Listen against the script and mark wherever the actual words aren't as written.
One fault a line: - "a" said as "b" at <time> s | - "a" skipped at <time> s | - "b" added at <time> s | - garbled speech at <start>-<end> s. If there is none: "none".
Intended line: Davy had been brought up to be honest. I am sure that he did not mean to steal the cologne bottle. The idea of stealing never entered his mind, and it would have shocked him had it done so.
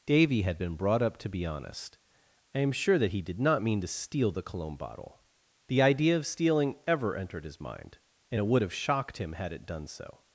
- "never" said as "ever" at 6.9 s